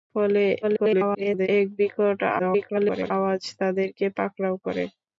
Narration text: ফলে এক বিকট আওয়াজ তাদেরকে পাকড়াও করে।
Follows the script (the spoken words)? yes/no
no